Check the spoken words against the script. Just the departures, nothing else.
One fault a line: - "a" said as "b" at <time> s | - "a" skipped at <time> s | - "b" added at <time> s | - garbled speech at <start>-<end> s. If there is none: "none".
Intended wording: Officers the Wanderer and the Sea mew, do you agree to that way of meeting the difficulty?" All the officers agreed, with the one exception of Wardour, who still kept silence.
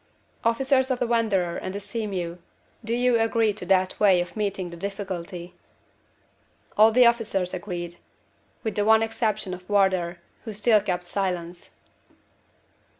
- "of" added at 0.9 s